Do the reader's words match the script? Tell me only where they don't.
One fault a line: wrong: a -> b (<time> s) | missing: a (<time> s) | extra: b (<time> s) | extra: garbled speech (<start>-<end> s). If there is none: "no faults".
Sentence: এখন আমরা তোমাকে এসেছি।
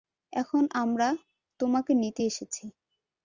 extra: নিতে (1.9 s)